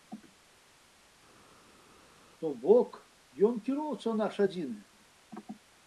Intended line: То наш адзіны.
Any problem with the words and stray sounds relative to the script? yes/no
yes